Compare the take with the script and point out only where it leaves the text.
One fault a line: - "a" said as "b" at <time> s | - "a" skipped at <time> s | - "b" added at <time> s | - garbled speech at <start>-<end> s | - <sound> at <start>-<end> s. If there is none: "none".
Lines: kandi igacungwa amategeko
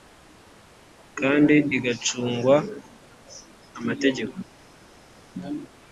none